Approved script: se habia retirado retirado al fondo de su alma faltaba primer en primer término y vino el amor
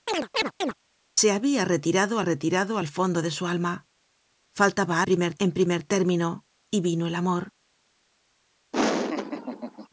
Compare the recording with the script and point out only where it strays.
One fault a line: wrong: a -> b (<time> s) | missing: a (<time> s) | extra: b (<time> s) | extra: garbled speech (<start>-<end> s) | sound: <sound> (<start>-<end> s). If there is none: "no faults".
sound: chirp (0.1-0.7 s)
sound: laugh (8.7-9.9 s)